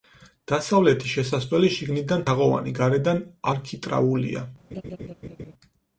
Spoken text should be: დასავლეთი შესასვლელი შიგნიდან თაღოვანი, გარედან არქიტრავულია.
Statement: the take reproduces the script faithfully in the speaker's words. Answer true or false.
true